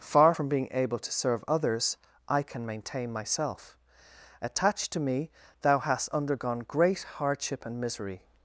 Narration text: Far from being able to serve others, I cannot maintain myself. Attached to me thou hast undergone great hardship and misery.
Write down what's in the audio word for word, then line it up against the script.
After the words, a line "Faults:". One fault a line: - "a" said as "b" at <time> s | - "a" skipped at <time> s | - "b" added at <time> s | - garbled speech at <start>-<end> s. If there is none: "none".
Far from being able to serve others, I can maintain myself. Attached to me thou hast undergone great hardship and misery.
Faults:
- "cannot" said as "can" at 2.4 s